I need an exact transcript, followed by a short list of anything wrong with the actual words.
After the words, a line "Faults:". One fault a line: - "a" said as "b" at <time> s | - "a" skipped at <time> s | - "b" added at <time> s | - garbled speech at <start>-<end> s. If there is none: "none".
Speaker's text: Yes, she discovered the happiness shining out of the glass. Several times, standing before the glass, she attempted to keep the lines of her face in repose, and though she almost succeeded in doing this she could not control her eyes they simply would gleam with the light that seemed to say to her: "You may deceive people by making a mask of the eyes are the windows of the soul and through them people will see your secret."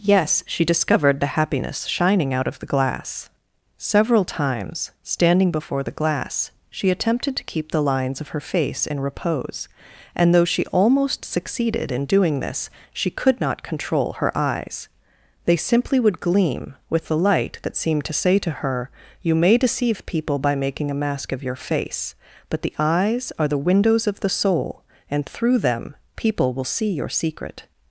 Yes, she discovered the happiness shining out of the glass. Several times, standing before the glass, she attempted to keep the lines of her face in repose, and though she almost succeeded in doing this she could not control her eyes they simply would gleam with the light that seemed to say to her: "You may deceive people by making a mask of your face, but the eyes are the windows of the soul and through them people will see your secret."
Faults:
- "your face but" added at 21.4 s